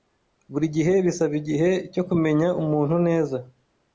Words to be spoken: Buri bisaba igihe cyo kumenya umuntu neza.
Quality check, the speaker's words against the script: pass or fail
fail